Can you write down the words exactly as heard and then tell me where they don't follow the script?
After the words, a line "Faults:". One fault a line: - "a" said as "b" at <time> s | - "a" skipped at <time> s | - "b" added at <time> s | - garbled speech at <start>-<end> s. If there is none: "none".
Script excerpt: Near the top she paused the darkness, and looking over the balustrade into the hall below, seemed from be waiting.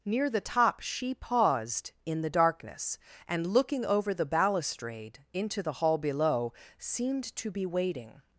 Near the top she paused in the darkness, and looking over the balustrade into the hall below, seemed to be waiting.
Faults:
- "in" added at 2.1 s
- "from" said as "to" at 7.4 s